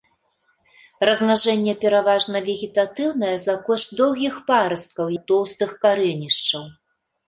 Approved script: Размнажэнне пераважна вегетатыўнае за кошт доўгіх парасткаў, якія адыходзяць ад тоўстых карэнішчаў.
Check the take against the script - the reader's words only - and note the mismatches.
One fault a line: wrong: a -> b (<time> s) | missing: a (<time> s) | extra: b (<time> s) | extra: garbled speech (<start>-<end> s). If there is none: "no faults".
missing: якія адыходзяць (5.0 s)